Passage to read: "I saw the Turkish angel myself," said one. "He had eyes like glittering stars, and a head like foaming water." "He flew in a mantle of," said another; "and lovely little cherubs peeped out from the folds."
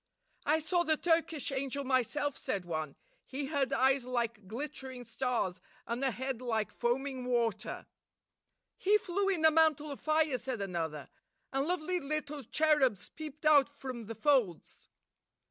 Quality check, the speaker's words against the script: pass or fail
fail